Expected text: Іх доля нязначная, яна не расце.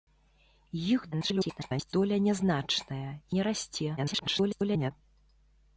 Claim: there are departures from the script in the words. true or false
true